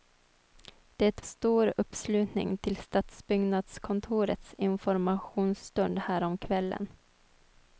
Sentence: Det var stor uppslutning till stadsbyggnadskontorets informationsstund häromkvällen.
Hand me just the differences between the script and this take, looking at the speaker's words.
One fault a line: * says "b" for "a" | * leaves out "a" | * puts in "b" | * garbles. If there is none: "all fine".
* leaves out "var"